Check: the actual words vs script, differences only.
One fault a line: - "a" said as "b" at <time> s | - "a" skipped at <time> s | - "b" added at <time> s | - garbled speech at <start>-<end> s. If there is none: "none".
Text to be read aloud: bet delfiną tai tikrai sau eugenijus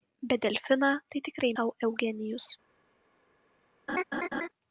none